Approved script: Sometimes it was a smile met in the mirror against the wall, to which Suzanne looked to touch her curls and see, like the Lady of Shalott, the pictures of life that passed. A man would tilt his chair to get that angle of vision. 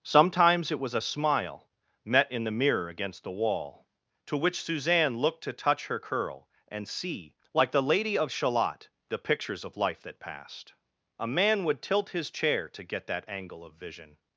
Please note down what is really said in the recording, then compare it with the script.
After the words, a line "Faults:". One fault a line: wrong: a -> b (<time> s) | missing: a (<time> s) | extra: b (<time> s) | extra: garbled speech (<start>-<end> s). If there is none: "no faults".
Sometimes it was a smile met in the mirror against the wall, to which Suzanne looked to touch her curl and see, like the Lady of Shalott, the pictures of life that passed. A man would tilt his chair to get that angle of vision.
Faults:
wrong: curls -> curl (6.0 s)